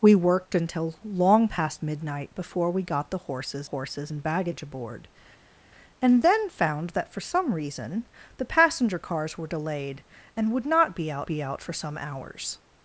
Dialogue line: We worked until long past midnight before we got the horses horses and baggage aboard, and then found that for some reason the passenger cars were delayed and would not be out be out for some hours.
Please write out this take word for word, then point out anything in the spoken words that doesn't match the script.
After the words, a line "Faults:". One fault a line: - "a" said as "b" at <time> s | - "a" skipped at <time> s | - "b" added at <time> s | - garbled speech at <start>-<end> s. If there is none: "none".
We worked until long past midnight before we got the horses horses and baggage aboard, and then found that for some reason the passenger cars were delayed and would not be out be out for some hours.
Faults:
none